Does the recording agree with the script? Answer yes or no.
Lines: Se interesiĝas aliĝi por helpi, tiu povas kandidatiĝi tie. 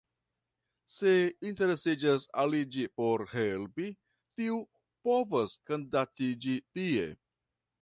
yes